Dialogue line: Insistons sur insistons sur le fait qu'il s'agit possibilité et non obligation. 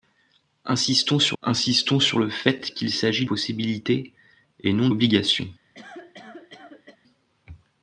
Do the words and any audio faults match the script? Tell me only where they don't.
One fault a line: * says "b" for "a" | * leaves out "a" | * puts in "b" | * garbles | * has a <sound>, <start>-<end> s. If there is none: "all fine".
* has a cough, 5.7-7.0 s